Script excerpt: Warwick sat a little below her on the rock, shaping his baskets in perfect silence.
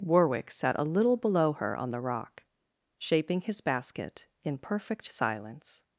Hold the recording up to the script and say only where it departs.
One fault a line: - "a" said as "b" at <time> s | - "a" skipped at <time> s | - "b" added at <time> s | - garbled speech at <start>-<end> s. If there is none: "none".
- "baskets" said as "basket" at 3.6 s